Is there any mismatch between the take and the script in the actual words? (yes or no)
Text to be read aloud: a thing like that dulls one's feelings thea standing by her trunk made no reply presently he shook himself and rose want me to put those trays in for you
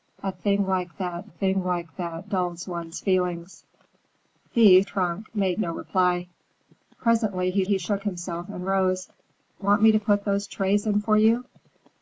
yes